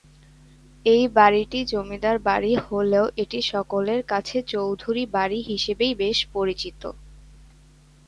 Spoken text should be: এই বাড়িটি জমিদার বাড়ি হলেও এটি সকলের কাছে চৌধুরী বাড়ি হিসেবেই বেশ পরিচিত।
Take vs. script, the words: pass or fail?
pass